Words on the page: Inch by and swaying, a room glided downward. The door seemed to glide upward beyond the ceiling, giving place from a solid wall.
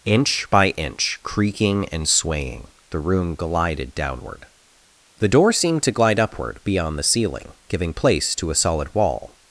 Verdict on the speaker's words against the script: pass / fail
fail